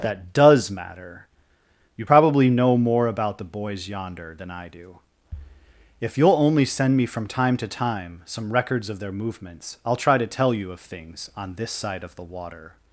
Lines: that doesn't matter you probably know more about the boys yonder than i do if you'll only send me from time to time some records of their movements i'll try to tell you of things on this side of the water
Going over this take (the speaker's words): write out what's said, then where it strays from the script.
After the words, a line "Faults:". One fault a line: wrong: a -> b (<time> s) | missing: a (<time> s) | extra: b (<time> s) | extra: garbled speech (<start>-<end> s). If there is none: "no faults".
that does matter you probably know more about the boys yonder than i do if you'll only send me from time to time some records of their movements i'll try to tell you of things on this side of the water
Faults:
wrong: doesn't -> does (0.3 s)